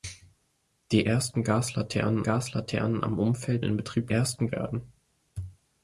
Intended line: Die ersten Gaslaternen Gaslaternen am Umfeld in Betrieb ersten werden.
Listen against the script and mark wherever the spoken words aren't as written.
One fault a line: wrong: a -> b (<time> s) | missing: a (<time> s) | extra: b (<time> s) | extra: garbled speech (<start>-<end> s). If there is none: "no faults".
no faults